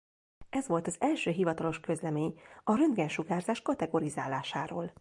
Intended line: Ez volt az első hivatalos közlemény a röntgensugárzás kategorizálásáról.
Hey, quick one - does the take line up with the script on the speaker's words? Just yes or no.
yes